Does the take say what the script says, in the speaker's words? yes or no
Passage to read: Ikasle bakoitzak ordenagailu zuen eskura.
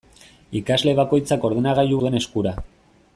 yes